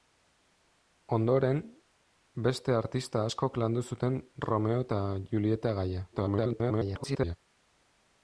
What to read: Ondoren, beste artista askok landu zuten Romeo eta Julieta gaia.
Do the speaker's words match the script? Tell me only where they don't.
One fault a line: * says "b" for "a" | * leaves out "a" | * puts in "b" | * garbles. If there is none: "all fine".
* garbles